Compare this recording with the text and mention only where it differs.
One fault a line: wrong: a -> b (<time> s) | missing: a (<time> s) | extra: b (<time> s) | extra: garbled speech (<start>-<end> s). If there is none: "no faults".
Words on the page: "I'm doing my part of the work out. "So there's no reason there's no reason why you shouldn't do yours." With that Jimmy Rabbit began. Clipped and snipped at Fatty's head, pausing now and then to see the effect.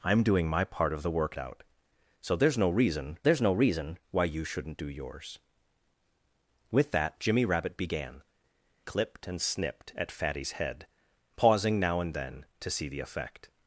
no faults